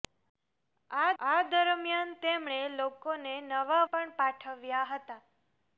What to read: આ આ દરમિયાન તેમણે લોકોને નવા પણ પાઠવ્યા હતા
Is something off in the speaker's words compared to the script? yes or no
no